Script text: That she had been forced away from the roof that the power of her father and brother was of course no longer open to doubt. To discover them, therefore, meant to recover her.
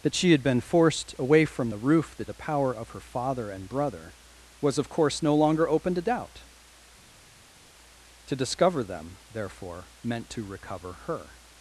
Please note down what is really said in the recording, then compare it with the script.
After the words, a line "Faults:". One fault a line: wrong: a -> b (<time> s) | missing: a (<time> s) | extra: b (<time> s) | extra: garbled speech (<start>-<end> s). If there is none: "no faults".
That she had been forced away from the roof that the power of her father and brother was of course no longer open to doubt. To discover them, therefore, meant to recover her.
Faults:
no faults